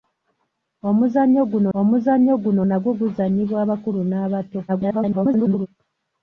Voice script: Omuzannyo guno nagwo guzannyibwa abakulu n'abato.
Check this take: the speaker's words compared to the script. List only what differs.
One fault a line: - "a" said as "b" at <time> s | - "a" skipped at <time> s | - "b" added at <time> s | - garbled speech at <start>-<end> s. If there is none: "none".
- "omuzannyo guno" added at 1.8 s
- garbled speech at 4.7-5.7 s